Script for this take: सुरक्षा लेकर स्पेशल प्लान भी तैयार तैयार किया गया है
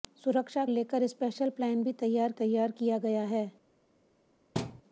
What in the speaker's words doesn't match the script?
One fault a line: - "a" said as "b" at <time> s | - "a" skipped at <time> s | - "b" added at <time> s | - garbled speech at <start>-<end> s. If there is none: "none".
none